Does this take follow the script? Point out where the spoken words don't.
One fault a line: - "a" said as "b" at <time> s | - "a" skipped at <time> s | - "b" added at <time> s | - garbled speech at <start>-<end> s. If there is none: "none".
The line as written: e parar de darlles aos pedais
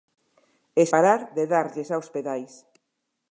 none